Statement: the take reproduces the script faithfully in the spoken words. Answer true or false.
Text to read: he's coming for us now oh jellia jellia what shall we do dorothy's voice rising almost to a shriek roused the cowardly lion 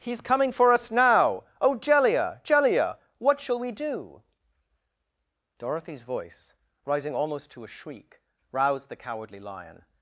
true